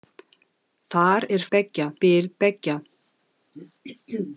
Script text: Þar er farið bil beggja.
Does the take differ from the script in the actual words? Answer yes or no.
yes